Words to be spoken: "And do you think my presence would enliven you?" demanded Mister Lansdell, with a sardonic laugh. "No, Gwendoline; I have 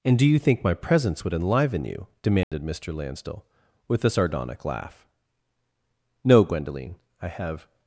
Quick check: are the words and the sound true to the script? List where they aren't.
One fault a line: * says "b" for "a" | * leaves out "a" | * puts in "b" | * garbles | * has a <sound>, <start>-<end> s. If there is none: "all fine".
* has a dropout, 2.4-2.5 s